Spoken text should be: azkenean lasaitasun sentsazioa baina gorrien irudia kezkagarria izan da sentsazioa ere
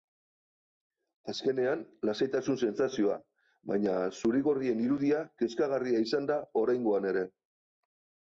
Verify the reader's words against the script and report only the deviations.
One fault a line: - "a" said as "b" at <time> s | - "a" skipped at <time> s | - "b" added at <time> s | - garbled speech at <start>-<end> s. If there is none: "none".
- "zuri" added at 4.2 s
- "sentsazioa" said as "oraingoan" at 6.6 s